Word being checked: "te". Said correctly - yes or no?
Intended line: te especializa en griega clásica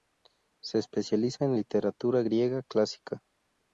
no